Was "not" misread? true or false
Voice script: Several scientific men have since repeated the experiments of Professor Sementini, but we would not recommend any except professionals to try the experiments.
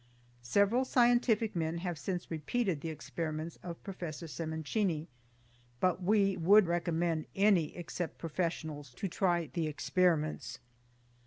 true